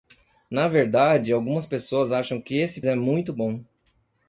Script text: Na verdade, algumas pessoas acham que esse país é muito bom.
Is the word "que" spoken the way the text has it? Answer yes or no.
yes